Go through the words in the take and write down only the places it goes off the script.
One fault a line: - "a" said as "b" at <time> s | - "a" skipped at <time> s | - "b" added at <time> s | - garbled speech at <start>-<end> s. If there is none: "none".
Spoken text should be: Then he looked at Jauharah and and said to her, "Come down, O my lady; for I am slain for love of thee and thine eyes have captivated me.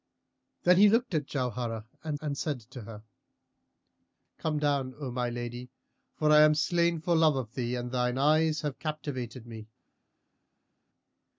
none